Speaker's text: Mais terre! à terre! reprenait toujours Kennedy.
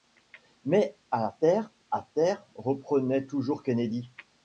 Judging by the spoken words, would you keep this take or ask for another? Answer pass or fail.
fail